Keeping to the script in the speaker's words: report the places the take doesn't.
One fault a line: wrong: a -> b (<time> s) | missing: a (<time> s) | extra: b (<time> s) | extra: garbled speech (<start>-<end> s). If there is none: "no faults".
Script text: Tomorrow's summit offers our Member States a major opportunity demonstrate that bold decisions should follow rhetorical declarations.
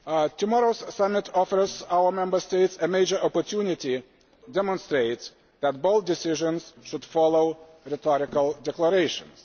no faults